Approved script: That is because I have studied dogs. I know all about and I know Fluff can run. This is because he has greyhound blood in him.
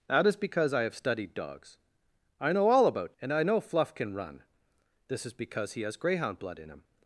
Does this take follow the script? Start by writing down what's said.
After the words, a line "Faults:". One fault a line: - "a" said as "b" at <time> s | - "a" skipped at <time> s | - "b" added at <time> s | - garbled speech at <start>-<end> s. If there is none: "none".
That is because I have studied dogs. I know all about and I know Fluff can run. This is because he has greyhound blood in him.
Faults:
none